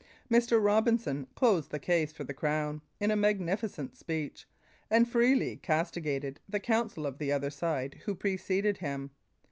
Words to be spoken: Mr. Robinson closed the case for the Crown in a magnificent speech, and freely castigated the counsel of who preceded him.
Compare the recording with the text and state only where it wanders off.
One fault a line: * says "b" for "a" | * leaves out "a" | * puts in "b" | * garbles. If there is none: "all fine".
* puts in "the other side"